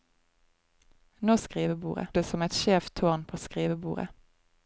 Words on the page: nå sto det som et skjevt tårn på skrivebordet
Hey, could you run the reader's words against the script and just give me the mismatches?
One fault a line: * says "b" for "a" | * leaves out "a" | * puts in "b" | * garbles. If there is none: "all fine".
* says "skrivebordet" for "sto"